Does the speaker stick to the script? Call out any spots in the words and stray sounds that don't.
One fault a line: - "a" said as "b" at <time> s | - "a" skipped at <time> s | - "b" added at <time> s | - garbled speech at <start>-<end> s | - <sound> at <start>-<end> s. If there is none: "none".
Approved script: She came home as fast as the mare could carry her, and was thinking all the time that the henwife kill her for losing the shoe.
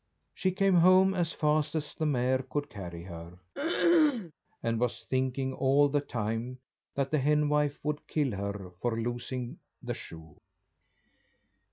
- throat clearing at 3.6-4.3 s
- "would" added at 7.8 s